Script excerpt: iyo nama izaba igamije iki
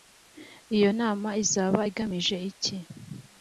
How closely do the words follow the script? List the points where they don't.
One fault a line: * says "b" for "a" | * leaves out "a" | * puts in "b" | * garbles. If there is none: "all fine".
all fine